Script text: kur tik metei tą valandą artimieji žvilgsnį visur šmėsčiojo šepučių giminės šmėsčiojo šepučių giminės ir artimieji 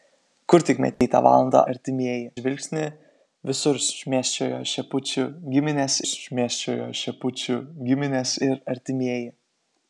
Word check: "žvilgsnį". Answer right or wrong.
right